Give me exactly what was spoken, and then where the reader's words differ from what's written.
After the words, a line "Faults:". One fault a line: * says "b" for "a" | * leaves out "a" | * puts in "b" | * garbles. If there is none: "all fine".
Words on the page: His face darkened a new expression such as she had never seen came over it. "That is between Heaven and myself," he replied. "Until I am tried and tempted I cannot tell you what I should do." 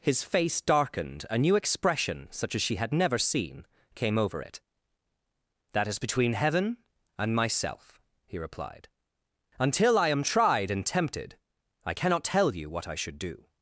His face darkened a new expression such as she had never seen came over it. "That is between Heaven and myself," he replied. "Until I am tried and tempted I cannot tell you what I should do."
Faults:
all fine